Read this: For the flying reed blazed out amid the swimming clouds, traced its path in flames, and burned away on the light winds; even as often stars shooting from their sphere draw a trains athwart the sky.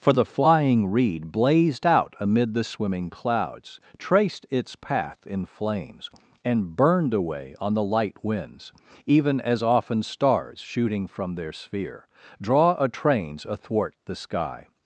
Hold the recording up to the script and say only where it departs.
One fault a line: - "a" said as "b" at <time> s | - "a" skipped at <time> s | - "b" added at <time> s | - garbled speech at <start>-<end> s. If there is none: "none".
none